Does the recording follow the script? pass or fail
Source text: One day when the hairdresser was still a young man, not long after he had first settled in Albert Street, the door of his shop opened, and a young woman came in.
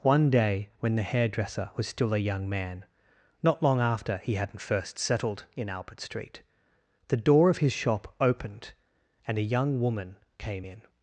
fail